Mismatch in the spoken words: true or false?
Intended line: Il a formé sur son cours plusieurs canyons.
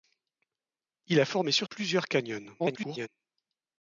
true